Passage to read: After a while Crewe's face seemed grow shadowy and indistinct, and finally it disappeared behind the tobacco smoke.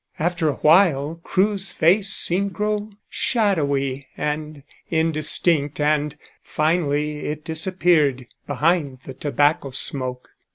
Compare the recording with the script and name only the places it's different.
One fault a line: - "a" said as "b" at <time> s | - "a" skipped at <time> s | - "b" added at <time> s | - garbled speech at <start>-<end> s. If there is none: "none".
none